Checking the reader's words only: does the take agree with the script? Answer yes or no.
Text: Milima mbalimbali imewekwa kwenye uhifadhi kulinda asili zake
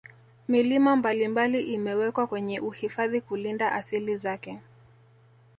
yes